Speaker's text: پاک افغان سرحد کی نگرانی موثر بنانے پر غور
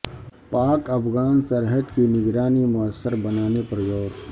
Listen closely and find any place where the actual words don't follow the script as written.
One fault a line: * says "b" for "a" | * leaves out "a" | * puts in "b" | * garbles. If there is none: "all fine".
all fine